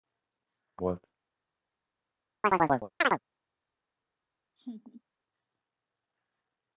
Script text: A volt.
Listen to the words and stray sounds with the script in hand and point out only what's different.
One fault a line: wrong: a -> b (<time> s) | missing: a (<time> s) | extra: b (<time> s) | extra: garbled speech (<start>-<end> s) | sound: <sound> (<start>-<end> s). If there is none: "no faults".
sound: chirp (2.4-3.2 s)
sound: laugh (4.6-5.0 s)